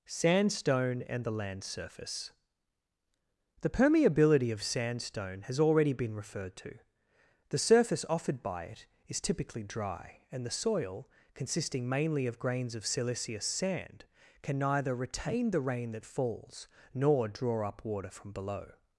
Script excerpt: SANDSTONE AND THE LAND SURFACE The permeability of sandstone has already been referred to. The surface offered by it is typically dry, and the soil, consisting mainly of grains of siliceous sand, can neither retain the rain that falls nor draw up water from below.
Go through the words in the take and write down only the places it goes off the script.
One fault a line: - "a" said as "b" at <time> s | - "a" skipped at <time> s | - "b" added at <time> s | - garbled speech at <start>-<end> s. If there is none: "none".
none